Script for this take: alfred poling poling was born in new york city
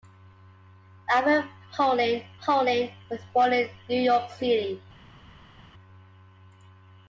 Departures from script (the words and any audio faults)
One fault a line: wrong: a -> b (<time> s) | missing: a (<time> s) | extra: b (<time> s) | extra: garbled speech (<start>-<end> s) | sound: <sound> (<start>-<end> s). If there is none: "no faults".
no faults